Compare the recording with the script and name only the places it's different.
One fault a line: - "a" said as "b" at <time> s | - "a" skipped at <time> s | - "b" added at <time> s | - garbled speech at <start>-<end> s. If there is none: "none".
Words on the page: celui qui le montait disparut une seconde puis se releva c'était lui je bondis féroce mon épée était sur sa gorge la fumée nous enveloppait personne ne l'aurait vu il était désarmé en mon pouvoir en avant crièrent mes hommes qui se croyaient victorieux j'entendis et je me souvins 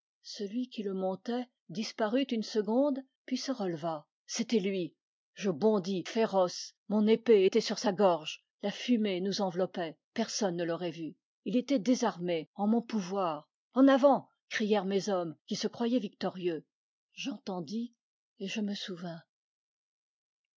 none